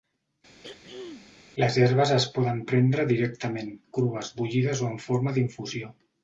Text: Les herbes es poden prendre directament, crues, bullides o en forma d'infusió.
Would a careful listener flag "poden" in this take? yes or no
no